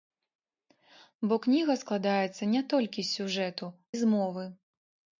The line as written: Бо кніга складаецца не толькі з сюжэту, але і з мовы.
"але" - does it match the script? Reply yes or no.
no